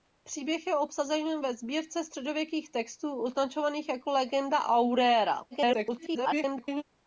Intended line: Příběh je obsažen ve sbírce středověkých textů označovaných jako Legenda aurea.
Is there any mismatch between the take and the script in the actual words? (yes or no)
yes